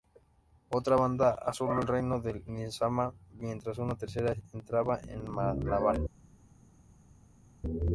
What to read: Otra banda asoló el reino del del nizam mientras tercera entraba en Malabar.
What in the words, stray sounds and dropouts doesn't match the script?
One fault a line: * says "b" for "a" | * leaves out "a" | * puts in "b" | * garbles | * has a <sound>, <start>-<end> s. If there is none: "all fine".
* leaves out "del"
* puts in "una"